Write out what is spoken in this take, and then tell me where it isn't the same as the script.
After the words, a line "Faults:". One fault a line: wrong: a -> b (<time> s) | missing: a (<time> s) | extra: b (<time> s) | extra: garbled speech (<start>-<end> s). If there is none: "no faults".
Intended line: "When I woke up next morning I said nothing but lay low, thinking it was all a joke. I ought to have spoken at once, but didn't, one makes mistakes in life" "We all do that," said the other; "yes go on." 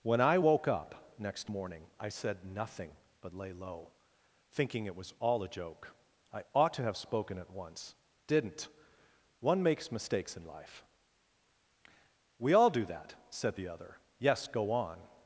"When I woke up next morning I said nothing but lay low, thinking it was all a joke. I ought to have spoken at once, didn't, one makes mistakes in life" "We all do that," said the other; "yes go on."
Faults:
missing: but (7.9 s)